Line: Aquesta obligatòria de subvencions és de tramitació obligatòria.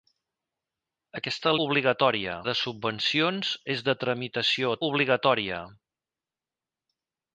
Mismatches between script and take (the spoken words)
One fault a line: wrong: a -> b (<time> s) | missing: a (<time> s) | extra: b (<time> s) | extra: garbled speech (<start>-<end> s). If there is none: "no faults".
no faults